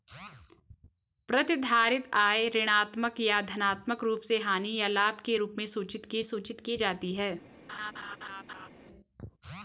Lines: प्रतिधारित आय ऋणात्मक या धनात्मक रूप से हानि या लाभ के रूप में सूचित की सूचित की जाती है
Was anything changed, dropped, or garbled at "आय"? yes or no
no